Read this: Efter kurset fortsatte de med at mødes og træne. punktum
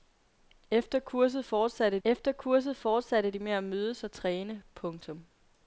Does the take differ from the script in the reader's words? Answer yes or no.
yes